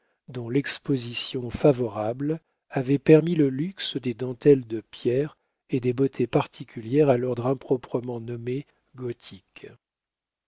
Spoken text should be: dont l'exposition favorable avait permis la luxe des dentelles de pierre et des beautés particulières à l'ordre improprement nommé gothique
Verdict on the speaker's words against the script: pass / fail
fail